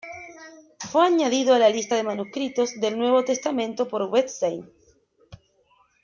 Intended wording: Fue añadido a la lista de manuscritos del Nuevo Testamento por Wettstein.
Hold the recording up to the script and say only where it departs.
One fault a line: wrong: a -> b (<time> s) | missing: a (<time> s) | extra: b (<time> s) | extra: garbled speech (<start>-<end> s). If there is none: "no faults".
no faults